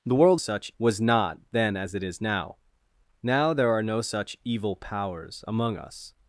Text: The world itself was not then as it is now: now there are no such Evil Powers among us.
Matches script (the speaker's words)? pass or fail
fail